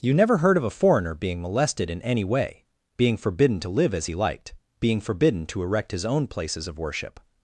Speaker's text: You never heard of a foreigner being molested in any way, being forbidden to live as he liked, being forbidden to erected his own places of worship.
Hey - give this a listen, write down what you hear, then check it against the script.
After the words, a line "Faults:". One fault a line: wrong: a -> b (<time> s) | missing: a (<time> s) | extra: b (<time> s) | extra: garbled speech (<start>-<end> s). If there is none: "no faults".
You never heard of a foreigner being molested in any way, being forbidden to live as he liked, being forbidden to erect his own places of worship.
Faults:
wrong: erected -> erect (5.6 s)